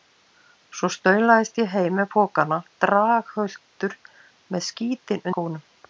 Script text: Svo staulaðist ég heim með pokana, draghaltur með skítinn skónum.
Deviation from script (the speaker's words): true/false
false